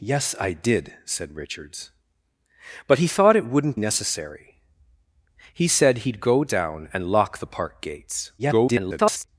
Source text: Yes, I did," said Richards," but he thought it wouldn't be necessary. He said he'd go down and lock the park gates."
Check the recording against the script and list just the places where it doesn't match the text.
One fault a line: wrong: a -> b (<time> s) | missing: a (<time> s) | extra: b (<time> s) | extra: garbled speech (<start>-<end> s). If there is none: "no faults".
missing: be (3.8 s)
extra: garbled speech (8.4-9.3 s)